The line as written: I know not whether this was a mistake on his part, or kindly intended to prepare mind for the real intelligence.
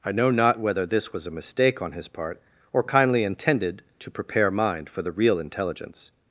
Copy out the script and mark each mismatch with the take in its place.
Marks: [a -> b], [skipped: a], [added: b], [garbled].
I know not whether this was a mistake on his part, or kindly intended to prepare mind for the real intelligence.